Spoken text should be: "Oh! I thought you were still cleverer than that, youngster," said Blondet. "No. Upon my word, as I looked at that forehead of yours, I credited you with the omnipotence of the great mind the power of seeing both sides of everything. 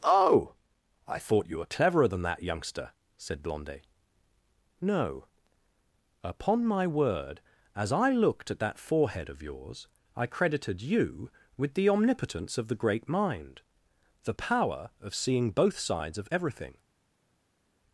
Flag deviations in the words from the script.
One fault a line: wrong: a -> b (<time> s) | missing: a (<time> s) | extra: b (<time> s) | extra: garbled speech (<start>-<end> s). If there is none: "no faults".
missing: still (1.6 s)